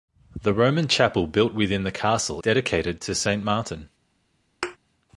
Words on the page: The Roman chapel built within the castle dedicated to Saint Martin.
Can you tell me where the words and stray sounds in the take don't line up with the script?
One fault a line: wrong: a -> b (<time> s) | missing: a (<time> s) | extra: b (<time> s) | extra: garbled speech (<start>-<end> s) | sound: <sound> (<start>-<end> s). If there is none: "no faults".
sound: thud (4.6-4.8 s)